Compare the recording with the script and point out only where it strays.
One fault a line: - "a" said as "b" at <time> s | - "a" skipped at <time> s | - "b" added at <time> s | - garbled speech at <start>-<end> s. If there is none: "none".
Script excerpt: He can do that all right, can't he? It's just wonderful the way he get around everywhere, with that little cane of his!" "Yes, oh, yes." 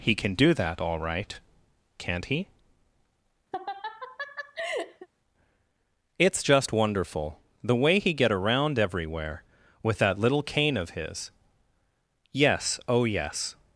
none